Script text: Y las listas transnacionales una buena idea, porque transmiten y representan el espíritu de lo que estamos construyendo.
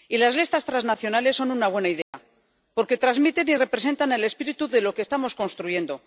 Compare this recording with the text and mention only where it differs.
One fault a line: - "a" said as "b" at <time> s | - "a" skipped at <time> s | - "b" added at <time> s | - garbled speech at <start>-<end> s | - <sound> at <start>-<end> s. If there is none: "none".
- "son" added at 1.4 s
- dropout at 2.0-2.1 s